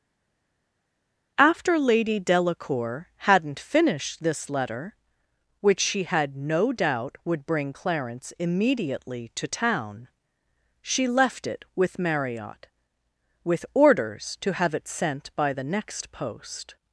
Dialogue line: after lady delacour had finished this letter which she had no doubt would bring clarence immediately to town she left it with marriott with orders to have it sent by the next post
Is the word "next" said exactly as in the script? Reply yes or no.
yes